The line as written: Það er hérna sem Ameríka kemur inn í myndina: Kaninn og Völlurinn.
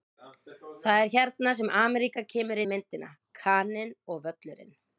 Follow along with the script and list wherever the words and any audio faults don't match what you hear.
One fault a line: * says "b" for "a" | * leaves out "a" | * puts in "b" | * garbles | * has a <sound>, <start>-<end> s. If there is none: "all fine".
* leaves out "inn"